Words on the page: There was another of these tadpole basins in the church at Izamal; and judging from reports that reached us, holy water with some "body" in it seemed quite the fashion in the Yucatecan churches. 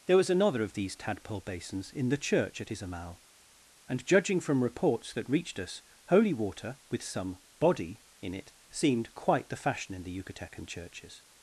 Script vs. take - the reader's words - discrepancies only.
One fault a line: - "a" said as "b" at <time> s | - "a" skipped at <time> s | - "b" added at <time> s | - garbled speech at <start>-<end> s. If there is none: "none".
none